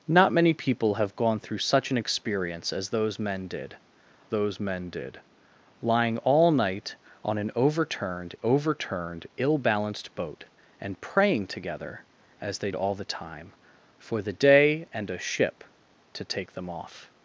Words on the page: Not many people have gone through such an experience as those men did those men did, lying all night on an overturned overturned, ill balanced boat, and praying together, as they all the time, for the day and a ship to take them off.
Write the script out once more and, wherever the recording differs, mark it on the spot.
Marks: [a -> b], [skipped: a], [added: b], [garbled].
Not many people have gone through such an experience as those men did those men did, lying all night on an overturned overturned, ill balanced boat, and praying together, as they all the time, for the day and a ship to take them off.